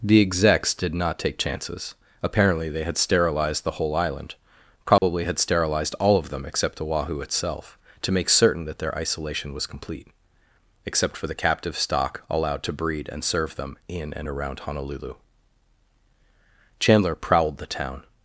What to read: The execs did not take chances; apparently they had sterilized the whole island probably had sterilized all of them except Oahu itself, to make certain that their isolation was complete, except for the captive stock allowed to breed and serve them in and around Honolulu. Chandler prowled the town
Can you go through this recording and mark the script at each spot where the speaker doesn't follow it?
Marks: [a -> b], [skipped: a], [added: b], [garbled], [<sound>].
The execs did not take chances; apparently they had sterilized the whole island probably [dropout] had sterilized all of them except Oahu itself, to make certain that their isolation was complete, except for the captive stock allowed to breed and serve them in and around Honolulu. Chandler prowled the town